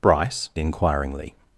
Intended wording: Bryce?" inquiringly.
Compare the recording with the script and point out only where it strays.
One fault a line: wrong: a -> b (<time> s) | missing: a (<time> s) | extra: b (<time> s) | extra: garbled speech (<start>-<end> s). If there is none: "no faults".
no faults